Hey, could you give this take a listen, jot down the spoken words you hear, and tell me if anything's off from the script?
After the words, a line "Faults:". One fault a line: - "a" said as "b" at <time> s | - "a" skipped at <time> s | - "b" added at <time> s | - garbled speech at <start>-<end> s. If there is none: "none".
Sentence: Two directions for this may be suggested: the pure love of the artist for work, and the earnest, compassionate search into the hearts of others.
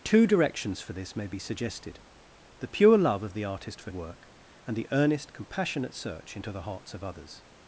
Two directions for this may be suggested: the pure love of the artist for work, and the earnest, compassionate search into the hearts of others.
Faults:
none